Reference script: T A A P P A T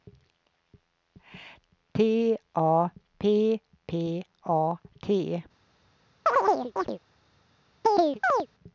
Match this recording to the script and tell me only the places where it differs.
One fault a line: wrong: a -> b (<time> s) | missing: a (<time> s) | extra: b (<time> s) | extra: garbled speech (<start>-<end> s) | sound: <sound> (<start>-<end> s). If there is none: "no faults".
missing: A (2.9 s)
sound: chirp (6.3-7.0 s)
sound: chirp (7.8-8.5 s)